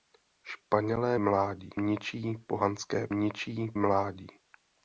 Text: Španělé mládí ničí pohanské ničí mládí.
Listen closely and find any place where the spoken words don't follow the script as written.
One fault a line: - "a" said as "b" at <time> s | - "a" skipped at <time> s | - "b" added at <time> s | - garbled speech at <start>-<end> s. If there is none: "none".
none